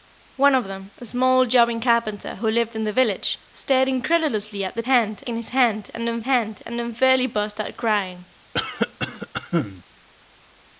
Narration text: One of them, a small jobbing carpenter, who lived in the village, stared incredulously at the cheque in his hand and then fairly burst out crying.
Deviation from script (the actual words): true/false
true